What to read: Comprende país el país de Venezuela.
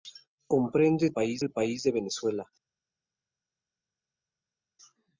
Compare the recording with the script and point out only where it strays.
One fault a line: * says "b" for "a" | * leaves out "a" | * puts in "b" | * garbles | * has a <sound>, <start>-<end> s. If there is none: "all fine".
all fine